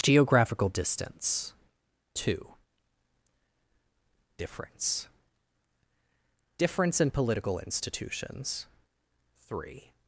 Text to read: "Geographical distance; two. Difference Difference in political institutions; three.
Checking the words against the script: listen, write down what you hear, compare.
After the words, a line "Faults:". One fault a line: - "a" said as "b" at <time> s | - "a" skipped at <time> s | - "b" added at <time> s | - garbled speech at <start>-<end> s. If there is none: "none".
"Geographical distance; two. Difference Difference in political institutions; three.
Faults:
none